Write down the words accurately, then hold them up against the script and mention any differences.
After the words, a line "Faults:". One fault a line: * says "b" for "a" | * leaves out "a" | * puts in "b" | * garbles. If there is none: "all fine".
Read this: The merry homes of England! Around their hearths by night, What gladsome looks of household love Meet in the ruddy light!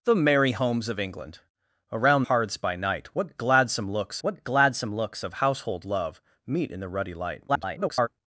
The merry homes of England! Around hearths by night, What gladsome looks What gladsome looks of household love Meet in the ruddy light! [garbled]
Faults:
* leaves out "their"
* puts in "What gladsome looks"
* garbles